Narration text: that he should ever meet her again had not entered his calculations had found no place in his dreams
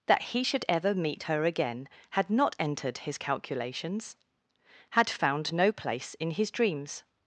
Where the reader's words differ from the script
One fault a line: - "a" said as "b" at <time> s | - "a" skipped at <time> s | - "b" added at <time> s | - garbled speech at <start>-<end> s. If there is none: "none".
none